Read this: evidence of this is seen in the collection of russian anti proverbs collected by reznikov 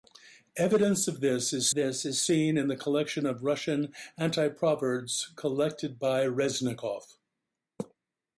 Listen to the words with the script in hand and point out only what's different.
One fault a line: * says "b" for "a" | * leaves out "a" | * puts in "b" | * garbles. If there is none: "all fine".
* puts in "this is"